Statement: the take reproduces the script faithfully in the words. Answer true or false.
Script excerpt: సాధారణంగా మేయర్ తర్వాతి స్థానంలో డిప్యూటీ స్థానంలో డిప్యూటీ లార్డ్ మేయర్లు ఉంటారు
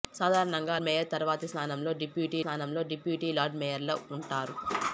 true